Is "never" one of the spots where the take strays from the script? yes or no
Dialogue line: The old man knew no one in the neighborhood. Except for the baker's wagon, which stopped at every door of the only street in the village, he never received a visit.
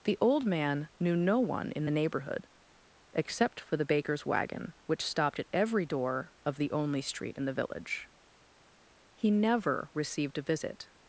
no